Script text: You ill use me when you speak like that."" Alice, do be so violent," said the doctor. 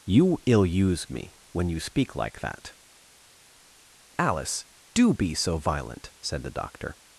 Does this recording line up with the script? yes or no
yes